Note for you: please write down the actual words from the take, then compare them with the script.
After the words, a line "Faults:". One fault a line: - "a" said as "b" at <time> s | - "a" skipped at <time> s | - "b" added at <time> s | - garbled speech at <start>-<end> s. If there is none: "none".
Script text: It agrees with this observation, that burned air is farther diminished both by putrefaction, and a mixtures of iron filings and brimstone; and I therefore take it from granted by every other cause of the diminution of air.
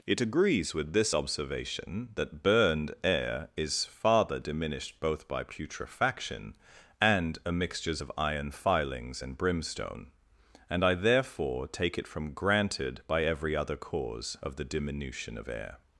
It agrees with this observation, that burned air is farther diminished both by putrefaction, and a mixtures of iron filings and brimstone; and I therefore take it from granted by every other cause of the diminution of air.
Faults:
none